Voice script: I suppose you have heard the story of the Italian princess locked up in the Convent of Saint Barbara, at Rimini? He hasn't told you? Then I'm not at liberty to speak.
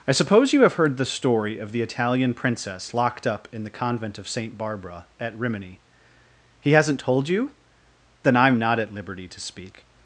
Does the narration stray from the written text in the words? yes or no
no